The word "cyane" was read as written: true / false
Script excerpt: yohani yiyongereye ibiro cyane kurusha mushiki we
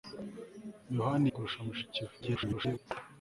false